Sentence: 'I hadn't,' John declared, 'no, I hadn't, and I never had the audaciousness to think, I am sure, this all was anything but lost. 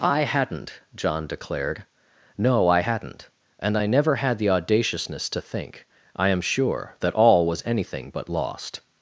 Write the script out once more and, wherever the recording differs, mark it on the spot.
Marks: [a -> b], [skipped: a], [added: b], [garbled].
'I hadn't,' John declared, 'no, I hadn't, and I never had the audaciousness to think, I am sure, [this -> that] all was anything but lost.